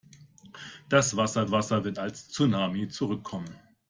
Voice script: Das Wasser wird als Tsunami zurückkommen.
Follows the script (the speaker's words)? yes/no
no